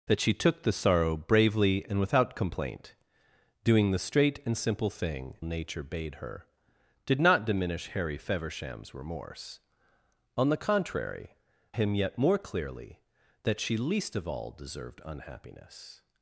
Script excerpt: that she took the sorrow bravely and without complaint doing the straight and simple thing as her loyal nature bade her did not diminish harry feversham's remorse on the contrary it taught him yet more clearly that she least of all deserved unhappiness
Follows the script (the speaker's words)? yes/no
no